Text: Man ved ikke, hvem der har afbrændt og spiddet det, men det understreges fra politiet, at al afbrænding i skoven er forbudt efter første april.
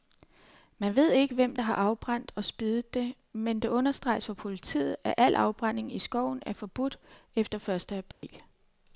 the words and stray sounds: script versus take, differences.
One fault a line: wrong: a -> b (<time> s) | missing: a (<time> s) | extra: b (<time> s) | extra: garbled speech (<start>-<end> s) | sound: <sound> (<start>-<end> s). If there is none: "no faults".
sound: dropout (8.1-8.2 s)